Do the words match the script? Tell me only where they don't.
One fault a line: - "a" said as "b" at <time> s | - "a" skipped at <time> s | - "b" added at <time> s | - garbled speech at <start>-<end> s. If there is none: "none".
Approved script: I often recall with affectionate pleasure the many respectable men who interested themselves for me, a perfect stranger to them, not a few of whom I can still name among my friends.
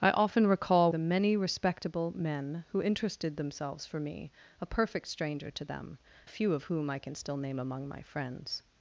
- "with affectionate pleasure" skipped at 0.9 s
- "not" skipped at 6.0 s